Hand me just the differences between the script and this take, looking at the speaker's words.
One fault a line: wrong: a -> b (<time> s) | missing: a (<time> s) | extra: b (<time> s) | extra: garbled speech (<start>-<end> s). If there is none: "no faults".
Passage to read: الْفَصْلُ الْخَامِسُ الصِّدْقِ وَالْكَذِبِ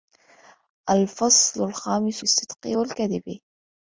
no faults